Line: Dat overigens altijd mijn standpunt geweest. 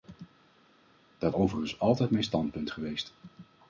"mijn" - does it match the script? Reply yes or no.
yes